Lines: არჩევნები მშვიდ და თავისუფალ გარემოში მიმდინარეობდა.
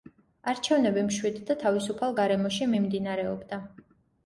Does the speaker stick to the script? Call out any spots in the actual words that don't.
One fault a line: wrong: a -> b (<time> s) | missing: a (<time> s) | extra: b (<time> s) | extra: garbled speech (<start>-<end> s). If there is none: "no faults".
no faults